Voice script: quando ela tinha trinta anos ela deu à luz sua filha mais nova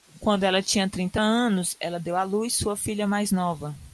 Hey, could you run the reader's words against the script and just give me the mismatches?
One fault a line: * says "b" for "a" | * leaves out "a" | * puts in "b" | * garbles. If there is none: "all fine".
all fine